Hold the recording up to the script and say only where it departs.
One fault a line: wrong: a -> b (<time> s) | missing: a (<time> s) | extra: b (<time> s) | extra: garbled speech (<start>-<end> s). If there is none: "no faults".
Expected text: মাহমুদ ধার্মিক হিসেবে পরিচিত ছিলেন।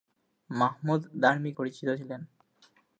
missing: হিসেবে (1.6 s)